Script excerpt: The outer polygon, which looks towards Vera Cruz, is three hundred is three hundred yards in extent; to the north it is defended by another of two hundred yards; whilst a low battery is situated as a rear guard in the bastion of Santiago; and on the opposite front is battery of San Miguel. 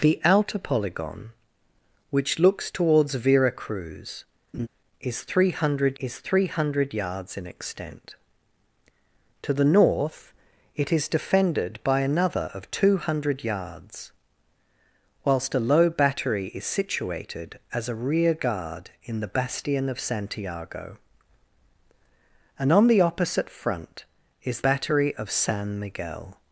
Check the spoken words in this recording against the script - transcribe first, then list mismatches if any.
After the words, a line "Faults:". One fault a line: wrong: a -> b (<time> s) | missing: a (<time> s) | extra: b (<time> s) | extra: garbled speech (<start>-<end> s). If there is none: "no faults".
The outer polygon, which looks towards Vera Cruz, is three hundred is three hundred yards in extent; to the north it is defended by another of two hundred yards; whilst a low battery is situated as a rear guard in the bastion of Santiago; and on the opposite front is battery of San Miguel.
Faults:
no faults